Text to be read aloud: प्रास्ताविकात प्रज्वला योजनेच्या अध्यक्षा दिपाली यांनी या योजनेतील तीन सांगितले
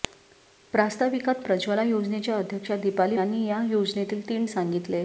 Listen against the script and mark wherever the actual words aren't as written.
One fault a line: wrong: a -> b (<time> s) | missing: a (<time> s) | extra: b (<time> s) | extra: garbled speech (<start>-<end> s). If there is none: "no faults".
no faults